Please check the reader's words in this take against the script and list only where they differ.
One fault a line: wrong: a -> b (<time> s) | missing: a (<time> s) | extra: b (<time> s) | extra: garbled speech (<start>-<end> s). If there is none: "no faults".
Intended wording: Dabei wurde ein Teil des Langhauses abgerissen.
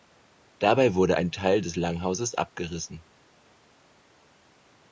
no faults